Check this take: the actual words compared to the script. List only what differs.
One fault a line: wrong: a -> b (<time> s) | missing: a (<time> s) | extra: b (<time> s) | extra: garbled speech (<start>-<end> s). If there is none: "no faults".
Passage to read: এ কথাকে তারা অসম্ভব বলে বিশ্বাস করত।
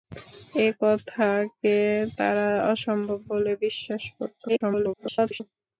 extra: garbled speech (4.5-5.4 s)